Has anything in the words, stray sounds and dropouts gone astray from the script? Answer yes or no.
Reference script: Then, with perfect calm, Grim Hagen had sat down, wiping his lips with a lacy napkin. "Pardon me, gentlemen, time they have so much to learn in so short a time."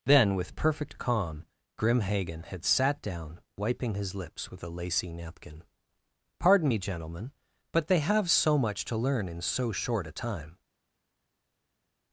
yes